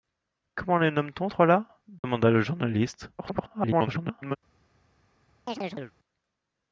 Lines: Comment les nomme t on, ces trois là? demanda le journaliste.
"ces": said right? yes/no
no